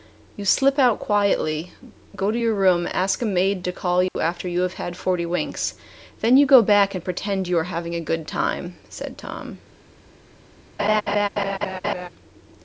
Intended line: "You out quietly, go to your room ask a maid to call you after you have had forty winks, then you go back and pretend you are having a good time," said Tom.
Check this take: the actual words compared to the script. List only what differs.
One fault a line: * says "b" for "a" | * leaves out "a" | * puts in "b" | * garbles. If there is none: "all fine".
* puts in "slip"